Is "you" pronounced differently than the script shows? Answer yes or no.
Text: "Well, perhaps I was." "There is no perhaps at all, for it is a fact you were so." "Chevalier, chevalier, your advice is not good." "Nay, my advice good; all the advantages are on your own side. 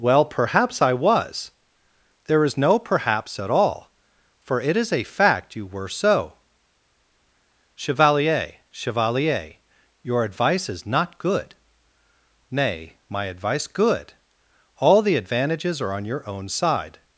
no